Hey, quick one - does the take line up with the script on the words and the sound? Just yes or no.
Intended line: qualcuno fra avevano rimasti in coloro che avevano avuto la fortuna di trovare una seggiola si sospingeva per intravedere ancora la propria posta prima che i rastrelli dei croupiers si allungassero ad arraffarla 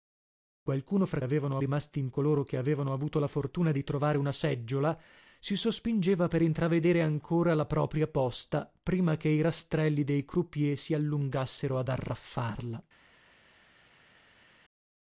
yes